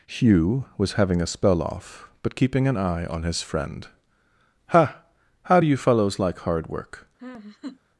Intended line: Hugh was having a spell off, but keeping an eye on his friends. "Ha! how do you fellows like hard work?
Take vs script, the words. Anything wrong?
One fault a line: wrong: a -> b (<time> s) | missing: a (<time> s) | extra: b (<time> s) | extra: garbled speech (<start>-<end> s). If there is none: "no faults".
wrong: friends -> friend (3.4 s)